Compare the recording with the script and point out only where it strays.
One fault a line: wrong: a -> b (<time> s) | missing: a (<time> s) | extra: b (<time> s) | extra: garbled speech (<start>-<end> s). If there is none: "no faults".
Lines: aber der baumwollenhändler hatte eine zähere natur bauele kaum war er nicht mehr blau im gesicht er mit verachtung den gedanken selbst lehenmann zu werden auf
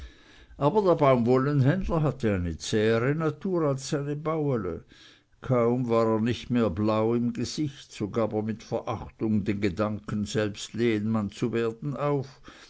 extra: als seine (3.7 s)
extra: so gab (7.9 s)